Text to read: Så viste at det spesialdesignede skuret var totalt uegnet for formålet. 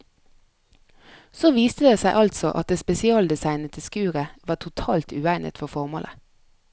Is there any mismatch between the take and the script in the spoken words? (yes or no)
yes